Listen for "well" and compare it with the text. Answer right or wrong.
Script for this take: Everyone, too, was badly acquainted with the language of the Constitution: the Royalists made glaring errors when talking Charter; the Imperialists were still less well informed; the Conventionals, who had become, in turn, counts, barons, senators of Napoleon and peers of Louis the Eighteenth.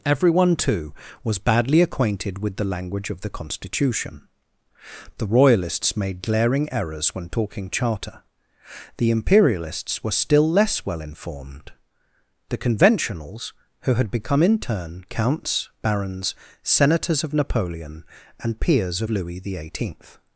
right